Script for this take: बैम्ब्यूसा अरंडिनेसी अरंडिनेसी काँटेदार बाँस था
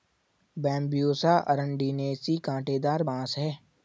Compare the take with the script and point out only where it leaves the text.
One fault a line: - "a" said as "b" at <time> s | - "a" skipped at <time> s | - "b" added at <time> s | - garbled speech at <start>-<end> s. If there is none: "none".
- "अरंडिनेसी" skipped at 2.4 s
- "था" said as "है" at 3.4 s